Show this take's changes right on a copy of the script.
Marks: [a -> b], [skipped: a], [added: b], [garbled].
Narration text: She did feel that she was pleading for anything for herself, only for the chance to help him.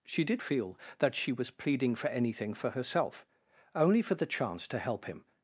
She did feel that she was pleading for anything for herself, only for the chance to help him.